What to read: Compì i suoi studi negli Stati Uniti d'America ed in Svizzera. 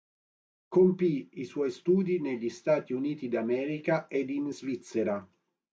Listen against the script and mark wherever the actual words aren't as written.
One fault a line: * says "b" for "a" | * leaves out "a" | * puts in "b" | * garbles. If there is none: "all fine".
all fine